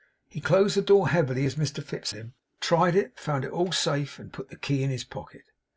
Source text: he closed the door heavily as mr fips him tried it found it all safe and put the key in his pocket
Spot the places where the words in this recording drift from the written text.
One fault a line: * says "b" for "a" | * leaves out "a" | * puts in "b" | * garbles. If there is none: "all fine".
all fine